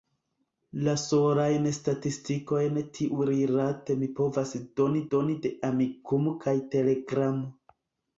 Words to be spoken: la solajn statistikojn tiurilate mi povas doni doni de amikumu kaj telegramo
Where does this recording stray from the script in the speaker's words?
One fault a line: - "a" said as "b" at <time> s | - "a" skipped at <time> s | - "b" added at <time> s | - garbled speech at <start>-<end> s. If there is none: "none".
none